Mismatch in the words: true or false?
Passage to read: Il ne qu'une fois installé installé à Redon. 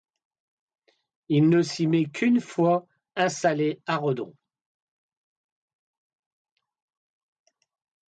true